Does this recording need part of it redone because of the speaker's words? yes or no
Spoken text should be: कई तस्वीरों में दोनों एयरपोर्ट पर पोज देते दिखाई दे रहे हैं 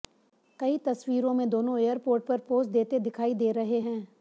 no